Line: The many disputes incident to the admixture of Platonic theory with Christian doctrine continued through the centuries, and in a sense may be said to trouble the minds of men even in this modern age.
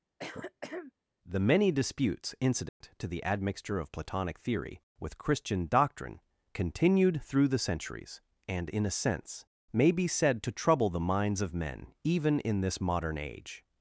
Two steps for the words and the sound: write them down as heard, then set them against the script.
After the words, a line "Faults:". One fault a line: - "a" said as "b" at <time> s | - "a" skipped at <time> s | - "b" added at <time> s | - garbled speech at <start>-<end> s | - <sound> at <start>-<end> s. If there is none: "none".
The many disputes incident to the admixture of Platonic theory with Christian doctrine continued through the centuries, and in a sense may be said to trouble the minds of men even in this modern age.
Faults:
- throat clearing at 0.2-0.9 s
- dropout at 2.7-2.8 s